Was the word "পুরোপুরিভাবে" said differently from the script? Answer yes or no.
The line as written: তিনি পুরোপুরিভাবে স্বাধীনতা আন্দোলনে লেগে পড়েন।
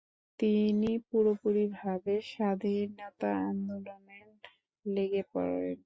no